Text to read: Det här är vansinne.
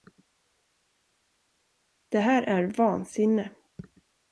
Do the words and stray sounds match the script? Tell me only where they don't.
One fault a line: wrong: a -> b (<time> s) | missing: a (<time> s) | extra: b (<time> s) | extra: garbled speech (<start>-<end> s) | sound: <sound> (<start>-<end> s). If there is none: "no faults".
no faults